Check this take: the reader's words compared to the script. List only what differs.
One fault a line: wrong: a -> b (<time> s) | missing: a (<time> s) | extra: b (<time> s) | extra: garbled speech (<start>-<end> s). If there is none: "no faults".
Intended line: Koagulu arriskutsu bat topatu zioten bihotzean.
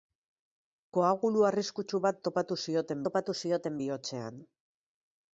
extra: topatu zioten (3.1 s)